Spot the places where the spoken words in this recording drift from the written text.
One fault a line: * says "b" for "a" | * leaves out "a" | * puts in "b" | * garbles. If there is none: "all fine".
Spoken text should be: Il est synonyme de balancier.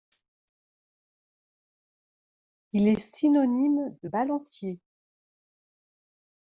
all fine